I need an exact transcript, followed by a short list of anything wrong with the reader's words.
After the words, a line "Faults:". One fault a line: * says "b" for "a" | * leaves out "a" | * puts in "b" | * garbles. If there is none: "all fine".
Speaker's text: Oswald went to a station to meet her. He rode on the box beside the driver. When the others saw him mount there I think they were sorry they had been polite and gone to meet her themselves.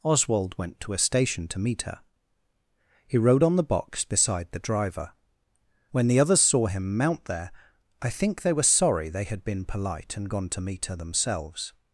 Oswald went to a station to meet her. He rode on the box beside the driver. When the others saw him mount there I think they were sorry they had been polite and gone to meet her themselves.
Faults:
all fine